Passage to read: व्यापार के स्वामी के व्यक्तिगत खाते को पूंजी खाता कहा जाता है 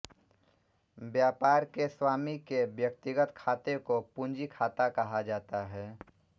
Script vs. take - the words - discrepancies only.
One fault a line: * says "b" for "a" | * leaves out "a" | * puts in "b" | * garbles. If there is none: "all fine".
all fine